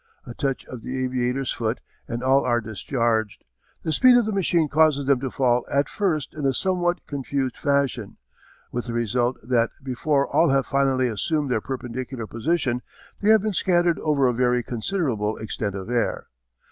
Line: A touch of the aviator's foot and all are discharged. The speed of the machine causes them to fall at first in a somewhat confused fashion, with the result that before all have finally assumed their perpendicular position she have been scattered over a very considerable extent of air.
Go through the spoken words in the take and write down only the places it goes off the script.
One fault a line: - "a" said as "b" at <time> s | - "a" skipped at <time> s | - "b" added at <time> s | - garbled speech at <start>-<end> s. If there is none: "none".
- "she" said as "they" at 13.2 s